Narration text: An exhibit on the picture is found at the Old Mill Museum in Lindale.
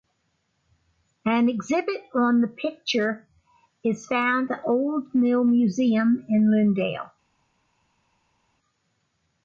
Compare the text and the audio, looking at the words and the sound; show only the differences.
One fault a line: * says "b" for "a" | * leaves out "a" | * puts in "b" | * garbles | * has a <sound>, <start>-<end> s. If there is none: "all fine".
* leaves out "at"